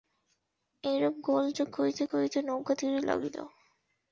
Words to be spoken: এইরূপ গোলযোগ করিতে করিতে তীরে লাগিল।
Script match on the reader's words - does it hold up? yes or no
no